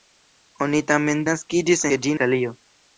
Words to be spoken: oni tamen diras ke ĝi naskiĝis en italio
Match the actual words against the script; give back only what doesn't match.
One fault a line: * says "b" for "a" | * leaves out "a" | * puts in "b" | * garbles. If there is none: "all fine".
* says "naskiĝis" for "diras"
* leaves out "naskiĝis en"